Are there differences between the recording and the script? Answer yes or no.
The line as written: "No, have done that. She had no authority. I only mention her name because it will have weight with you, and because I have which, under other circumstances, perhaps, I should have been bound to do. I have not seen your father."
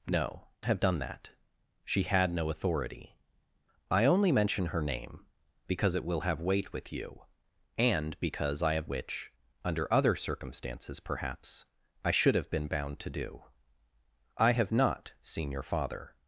no